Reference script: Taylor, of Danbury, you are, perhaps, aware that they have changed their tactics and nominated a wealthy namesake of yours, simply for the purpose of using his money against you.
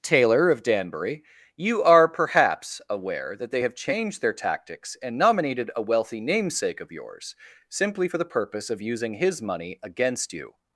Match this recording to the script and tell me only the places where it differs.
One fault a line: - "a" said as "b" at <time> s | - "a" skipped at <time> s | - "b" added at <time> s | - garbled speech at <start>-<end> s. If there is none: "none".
none